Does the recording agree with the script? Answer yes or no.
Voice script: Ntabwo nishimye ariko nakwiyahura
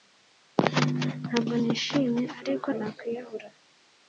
yes